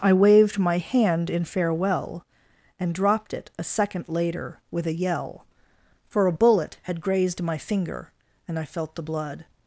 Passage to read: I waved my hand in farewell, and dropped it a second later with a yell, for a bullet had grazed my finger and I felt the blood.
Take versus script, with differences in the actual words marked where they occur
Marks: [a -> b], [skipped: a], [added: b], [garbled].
I waved my hand in farewell, and dropped it a second later with a yell, for a bullet had grazed my finger and I felt the blood.